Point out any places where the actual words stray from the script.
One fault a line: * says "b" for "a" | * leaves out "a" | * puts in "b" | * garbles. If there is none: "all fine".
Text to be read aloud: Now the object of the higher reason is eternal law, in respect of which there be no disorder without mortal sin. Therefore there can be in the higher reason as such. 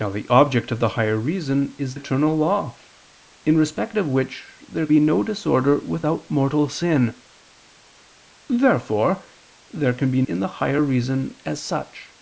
all fine